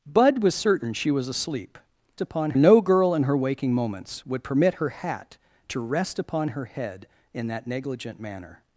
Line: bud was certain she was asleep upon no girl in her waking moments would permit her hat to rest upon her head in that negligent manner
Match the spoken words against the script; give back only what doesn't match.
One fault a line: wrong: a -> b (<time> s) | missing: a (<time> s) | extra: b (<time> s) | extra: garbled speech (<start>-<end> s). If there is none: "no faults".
no faults